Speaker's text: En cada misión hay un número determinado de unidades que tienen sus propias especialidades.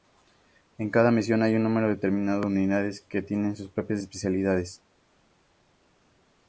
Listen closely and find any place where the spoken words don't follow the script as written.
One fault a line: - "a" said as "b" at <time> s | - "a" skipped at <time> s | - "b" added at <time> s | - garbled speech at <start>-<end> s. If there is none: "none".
none